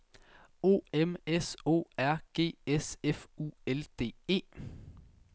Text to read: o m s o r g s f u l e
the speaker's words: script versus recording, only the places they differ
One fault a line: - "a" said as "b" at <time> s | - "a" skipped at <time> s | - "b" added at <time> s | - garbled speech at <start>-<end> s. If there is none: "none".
- "d" added at 4.0 s